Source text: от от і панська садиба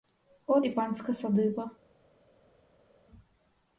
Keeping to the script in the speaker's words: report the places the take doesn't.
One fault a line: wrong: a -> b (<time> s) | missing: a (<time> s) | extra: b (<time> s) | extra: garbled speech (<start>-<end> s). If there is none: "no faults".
missing: от (0.7 s)